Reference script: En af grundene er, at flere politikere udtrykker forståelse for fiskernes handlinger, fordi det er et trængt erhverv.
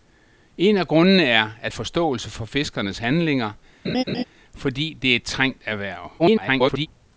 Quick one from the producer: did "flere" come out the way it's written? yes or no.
no